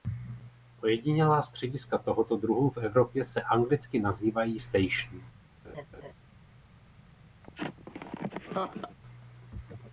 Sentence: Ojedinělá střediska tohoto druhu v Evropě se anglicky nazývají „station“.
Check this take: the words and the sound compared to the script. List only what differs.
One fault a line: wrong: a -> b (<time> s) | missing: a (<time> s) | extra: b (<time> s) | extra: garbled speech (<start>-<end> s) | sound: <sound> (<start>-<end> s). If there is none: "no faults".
sound: laugh (5.6-6.1 s)
sound: laugh (7.4-9.0 s)